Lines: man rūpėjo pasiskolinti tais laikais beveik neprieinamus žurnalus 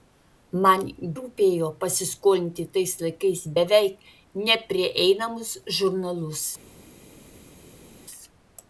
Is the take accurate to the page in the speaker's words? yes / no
yes